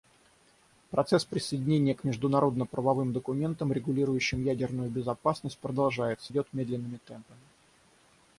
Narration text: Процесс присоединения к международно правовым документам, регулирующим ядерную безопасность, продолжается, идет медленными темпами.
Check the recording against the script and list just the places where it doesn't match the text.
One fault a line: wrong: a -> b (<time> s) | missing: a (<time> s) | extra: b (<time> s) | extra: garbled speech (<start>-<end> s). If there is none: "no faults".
no faults